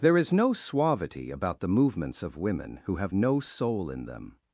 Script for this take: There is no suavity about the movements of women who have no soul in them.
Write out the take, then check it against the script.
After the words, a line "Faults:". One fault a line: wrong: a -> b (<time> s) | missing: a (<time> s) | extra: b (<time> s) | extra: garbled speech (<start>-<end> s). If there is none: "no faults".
There is no suavity about the movements of women who have no soul in them.
Faults:
no faults